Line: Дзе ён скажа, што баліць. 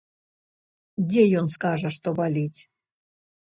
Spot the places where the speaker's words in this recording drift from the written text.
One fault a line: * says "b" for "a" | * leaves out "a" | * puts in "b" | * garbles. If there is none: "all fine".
all fine